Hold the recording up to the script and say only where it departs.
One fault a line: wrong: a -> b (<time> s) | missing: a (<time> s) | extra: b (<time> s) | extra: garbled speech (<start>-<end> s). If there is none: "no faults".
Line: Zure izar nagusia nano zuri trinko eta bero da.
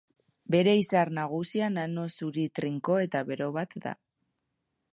wrong: Zure -> Bere (0.5 s)
extra: bat (3.6 s)